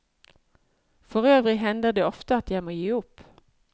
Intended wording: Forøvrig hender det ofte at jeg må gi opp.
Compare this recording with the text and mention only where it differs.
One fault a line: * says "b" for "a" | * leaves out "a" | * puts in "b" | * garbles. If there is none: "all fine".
all fine